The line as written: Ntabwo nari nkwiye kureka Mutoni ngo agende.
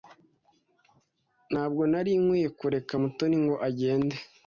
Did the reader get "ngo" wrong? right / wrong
right